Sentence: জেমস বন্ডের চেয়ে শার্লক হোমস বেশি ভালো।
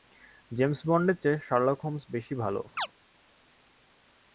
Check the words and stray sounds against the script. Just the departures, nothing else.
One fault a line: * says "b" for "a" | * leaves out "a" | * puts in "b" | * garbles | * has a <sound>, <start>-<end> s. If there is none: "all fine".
* has a chirp, 2.8-2.9 s